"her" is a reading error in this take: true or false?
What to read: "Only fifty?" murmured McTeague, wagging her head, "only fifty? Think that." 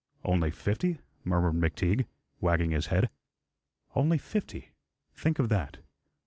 true